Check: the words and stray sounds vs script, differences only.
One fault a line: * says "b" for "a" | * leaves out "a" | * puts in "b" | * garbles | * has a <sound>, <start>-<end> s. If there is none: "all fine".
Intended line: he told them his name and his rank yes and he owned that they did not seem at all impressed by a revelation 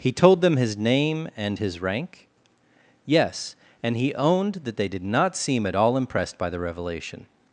* says "the" for "a"